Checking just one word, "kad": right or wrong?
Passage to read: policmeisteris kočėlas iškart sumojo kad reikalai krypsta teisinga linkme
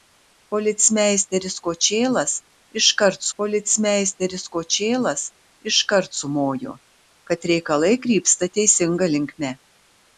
right